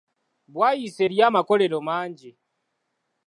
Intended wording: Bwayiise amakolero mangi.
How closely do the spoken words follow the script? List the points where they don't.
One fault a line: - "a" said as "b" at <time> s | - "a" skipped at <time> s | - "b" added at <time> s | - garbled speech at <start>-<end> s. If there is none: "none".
- "eriyo" added at 1.0 s